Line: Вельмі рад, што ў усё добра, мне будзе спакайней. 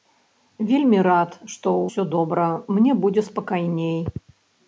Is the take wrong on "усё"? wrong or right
right